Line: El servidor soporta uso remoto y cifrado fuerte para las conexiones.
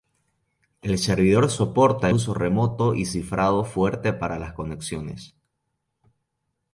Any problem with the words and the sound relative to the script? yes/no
no